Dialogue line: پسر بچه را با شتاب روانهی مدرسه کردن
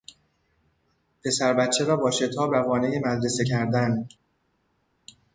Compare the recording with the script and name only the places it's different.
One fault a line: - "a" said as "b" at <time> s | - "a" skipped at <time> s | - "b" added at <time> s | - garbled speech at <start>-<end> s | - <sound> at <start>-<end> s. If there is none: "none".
none